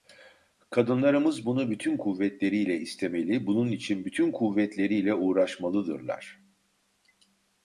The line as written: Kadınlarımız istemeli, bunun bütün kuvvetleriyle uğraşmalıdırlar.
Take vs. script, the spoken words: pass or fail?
fail